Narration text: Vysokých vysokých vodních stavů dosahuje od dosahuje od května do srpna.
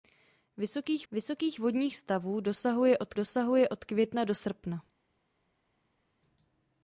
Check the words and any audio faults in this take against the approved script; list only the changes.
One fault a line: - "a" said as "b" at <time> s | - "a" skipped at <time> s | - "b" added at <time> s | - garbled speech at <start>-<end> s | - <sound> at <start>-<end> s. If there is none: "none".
none